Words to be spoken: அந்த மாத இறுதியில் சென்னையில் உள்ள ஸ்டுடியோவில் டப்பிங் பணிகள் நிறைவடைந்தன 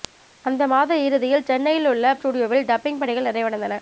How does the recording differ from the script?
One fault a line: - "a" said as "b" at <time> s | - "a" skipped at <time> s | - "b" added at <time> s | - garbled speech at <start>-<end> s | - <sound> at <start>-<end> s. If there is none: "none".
none